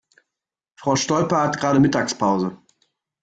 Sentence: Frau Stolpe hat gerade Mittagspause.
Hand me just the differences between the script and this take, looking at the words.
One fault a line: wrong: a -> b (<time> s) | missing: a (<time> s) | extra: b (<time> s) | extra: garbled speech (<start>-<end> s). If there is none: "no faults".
no faults